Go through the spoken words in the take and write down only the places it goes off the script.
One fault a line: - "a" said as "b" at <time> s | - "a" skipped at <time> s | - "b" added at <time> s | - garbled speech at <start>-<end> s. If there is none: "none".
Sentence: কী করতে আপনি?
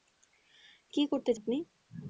none